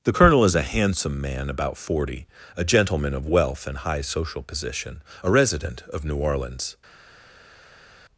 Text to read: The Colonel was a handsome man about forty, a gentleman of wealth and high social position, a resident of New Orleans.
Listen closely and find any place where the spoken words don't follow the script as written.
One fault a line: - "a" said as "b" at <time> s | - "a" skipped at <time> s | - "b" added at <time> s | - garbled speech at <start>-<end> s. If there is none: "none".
- "was" said as "is" at 0.4 s